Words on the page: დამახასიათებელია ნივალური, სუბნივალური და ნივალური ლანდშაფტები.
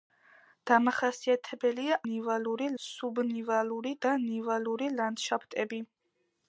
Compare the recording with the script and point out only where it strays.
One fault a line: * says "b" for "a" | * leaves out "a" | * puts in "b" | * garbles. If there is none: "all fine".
all fine